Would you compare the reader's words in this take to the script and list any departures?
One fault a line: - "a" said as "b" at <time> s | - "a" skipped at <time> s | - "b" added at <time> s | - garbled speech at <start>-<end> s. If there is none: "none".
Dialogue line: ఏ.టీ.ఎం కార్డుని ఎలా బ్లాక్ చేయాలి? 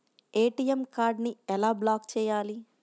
none